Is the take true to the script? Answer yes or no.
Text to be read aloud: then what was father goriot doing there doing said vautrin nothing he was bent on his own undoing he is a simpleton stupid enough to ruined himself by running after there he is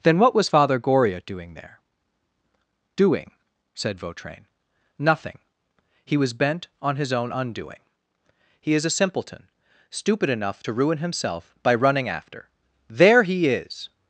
no